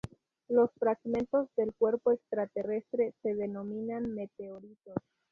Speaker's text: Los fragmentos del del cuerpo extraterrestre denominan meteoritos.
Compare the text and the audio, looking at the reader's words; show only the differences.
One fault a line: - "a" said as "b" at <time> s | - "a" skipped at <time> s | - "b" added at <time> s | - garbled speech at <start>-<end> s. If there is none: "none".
- "del" skipped at 1.8 s
- "se" added at 3.2 s